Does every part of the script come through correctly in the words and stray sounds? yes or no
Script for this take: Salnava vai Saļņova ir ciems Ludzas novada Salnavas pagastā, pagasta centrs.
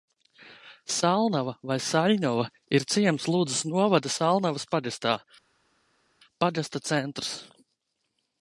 yes